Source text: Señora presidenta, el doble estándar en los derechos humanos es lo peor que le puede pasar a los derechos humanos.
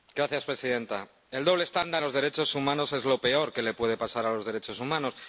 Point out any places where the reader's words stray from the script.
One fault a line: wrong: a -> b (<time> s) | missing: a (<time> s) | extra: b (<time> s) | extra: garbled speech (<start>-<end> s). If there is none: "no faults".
missing: en (2.0 s)